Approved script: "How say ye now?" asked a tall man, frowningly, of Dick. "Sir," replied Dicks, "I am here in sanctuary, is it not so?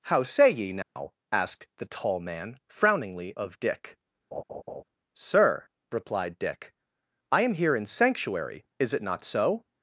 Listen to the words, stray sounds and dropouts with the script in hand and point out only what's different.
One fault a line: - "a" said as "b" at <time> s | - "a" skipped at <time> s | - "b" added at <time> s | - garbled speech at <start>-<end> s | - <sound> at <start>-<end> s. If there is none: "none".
- dropout at 0.8-1.0 s
- "a" said as "the" at 1.8 s
- laugh at 4.3-4.8 s
- "Dicks" said as "Dick" at 6.4 s